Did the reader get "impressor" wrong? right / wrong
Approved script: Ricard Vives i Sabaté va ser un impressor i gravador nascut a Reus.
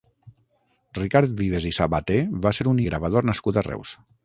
wrong